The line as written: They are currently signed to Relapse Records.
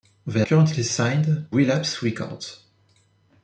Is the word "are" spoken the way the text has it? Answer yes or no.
no